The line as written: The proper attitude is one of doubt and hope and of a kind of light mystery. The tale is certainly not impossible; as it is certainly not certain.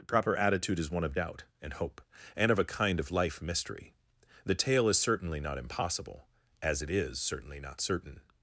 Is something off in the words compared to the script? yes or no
yes